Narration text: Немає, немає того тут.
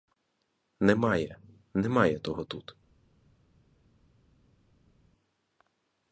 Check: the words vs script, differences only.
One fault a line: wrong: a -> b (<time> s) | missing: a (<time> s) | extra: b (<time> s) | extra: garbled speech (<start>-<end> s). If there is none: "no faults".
no faults